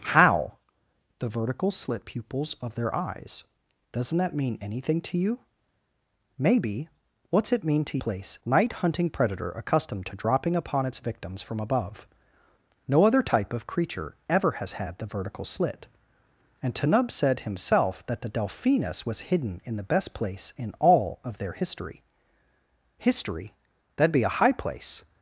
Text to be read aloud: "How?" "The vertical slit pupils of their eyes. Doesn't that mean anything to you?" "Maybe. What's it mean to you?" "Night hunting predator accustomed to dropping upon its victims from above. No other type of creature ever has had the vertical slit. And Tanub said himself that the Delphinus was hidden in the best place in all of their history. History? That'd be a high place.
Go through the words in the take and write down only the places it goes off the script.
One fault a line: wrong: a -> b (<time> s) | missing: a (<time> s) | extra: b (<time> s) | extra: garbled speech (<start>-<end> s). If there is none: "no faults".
wrong: you -> place (8.0 s)